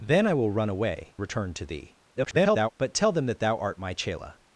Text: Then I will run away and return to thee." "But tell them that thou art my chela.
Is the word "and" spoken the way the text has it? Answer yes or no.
no